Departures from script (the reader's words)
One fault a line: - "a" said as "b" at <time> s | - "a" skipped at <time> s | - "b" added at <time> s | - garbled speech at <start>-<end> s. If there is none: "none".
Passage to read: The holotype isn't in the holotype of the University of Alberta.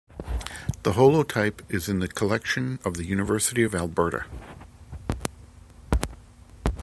- "isn't" said as "is" at 1.7 s
- "holotype" said as "collection" at 2.1 s